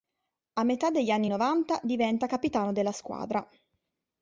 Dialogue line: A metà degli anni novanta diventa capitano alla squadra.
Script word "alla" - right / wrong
wrong